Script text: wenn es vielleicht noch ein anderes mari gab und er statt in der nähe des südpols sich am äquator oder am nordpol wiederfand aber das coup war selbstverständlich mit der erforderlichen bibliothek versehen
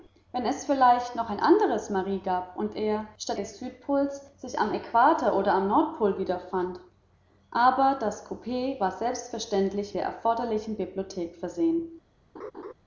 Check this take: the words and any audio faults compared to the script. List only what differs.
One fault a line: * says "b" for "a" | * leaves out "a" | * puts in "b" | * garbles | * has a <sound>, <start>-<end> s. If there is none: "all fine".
* leaves out "in der nähe"
* leaves out "mit"
* has a laugh, 12.3-12.7 s